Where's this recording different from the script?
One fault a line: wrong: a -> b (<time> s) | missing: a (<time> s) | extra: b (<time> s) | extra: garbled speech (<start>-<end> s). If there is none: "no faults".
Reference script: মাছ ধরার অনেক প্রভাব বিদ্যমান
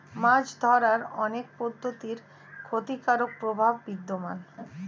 extra: পদ্ধতির ক্ষতিকারক (1.6 s)